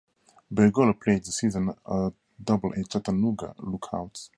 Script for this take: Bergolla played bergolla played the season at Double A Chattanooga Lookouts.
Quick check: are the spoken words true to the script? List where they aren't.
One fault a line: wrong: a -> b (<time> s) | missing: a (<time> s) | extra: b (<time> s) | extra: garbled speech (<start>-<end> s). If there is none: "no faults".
missing: bergolla played (1.2 s)